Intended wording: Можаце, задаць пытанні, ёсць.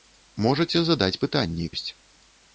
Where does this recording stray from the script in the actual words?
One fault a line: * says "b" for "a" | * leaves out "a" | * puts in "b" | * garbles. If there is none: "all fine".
all fine